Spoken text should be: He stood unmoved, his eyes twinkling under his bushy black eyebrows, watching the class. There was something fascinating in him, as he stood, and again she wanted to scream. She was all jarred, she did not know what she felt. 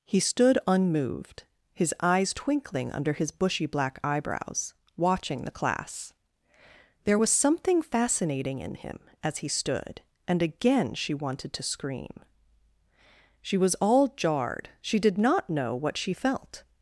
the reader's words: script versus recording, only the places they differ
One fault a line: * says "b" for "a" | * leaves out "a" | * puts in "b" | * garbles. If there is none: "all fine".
all fine